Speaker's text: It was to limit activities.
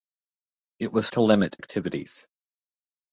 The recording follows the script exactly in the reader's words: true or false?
true